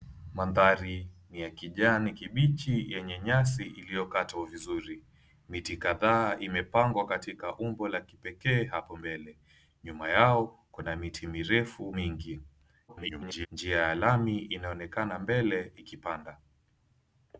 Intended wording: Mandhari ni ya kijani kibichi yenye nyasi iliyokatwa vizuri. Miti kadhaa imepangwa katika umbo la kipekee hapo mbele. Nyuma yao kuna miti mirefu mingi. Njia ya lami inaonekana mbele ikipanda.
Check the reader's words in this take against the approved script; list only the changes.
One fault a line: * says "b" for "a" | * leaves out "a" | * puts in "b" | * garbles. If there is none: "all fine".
* garbles